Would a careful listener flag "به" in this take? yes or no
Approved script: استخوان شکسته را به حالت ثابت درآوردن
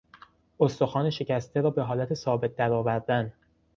no